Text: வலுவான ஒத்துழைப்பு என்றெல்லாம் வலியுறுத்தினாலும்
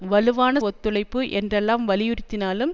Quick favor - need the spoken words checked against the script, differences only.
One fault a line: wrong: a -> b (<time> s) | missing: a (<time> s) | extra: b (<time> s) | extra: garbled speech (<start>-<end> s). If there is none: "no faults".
no faults